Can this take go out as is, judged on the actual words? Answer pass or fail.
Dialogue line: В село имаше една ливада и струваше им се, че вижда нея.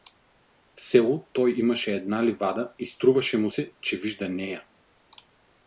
fail